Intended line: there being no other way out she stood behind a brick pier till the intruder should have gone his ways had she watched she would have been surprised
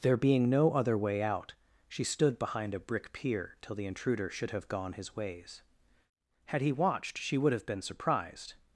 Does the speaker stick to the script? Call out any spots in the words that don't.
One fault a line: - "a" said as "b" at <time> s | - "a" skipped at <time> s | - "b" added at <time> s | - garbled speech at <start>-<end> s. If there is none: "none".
- "she" said as "he" at 6.6 s